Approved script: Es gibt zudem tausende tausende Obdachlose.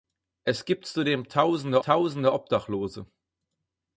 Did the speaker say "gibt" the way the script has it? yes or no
yes